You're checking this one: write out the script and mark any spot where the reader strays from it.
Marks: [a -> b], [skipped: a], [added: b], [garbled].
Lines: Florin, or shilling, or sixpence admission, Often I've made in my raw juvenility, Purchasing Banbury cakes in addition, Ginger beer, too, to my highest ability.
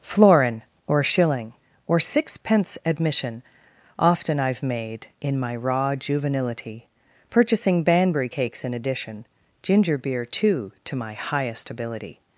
Florin, or shilling, or sixpence admission, Often I've made in my raw juvenility, Purchasing Banbury cakes in addition, Ginger beer, too, to my highest ability.